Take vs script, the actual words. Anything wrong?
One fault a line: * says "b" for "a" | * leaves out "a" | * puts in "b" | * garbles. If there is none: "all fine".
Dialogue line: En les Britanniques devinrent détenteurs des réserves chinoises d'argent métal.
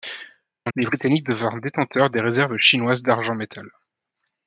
all fine